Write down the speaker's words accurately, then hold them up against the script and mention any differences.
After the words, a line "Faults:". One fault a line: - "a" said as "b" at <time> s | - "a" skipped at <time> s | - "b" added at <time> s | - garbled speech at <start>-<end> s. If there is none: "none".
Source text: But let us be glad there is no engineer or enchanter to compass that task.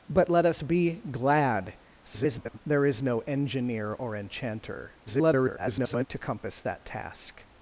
But let us be glad [garbled] there is no engineer or enchanter [garbled] to compass that task.
Faults:
- garbled speech at 2.0-2.6 s
- garbled speech at 5.1-6.1 s